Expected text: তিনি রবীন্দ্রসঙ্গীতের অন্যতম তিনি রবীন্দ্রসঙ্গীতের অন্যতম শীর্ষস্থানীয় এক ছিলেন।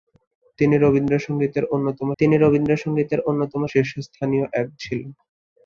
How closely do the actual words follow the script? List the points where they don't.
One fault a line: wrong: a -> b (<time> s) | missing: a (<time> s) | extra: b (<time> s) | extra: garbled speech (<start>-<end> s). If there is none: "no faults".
no faults